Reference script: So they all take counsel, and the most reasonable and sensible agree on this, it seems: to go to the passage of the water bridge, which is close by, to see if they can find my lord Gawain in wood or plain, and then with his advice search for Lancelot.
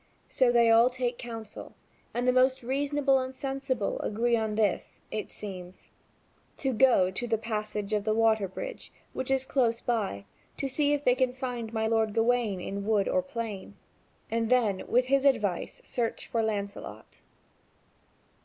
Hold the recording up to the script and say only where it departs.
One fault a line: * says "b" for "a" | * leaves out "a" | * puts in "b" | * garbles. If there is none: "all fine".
all fine